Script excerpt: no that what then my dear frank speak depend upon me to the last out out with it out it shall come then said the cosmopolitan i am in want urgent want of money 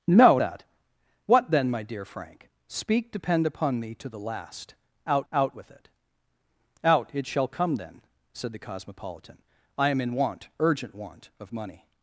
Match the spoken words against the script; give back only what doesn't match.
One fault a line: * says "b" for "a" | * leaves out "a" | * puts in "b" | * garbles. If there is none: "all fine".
all fine